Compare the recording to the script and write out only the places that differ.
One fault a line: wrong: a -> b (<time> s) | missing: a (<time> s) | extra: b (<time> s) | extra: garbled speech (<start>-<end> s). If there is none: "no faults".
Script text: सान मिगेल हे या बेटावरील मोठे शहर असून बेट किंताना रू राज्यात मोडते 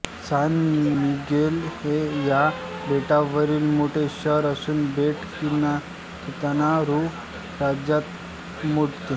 no faults